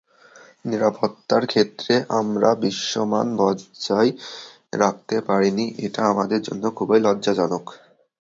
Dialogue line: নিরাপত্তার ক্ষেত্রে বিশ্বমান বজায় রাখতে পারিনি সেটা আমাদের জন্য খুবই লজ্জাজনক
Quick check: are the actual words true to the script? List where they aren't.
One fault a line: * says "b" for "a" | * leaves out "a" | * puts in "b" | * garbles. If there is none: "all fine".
* puts in "আমরা"
* says "এটা" for "সেটা"